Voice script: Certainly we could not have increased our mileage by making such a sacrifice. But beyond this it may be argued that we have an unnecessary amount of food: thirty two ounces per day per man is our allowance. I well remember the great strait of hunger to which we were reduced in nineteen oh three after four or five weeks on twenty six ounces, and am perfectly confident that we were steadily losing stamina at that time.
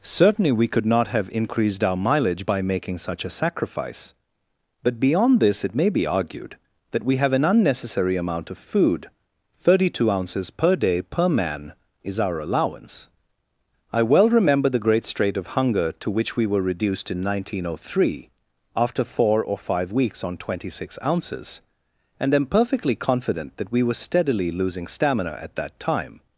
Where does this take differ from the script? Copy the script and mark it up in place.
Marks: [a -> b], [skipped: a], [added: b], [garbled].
Certainly we could not have increased our mileage by making such a sacrifice. But beyond this it may be argued that we have an unnecessary amount of food: thirty two ounces per day per man is our allowance. I well remember the great strait of hunger to which we were reduced in nineteen oh three after four or five weeks on twenty six ounces, and am perfectly confident that we were steadily losing stamina at that time.